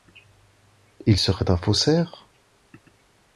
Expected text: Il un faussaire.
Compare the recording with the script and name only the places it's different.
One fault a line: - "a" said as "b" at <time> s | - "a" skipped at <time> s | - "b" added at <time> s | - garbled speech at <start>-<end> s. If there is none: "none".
- "serait" added at 1.2 s